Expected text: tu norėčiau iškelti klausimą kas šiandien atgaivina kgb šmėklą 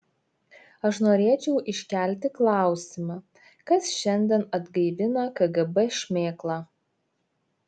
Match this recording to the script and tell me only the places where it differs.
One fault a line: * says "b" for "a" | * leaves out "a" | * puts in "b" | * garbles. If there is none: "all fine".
* says "aš" for "tu"